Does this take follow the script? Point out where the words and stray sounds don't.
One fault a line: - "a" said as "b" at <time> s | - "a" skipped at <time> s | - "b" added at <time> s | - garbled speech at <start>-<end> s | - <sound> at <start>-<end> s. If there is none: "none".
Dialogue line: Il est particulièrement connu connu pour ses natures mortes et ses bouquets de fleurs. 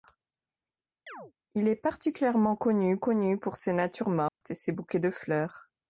- chirp at 1.1-1.3 s
- dropout at 4.3-4.4 s